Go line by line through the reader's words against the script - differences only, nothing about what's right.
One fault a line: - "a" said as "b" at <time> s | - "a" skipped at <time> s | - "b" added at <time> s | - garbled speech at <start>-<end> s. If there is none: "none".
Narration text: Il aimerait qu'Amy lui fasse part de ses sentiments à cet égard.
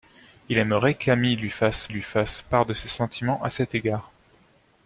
- "lui fasse" added at 1.9 s